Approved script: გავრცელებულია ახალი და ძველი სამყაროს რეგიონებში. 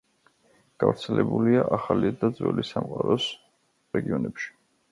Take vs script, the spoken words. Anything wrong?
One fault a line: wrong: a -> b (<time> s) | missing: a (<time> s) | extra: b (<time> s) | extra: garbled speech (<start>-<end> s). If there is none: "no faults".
no faults